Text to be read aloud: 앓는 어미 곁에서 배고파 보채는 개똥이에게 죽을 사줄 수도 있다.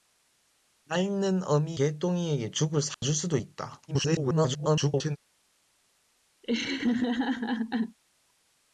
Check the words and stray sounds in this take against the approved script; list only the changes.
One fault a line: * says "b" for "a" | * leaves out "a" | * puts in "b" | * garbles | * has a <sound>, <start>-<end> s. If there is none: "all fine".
* leaves out "곁에서 배고파 보채는"
* has a dropout, 2.9-3.0 s
* garbles
* has a laugh, 6.4-8.0 s